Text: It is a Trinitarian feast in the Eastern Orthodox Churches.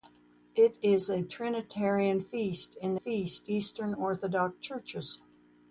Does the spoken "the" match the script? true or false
false